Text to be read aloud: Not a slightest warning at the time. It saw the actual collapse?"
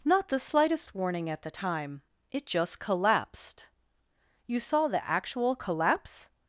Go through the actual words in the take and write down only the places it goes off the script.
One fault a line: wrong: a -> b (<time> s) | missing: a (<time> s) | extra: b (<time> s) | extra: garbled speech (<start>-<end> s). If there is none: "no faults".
wrong: a -> the (0.3 s)
extra: just collapsed You (2.5 s)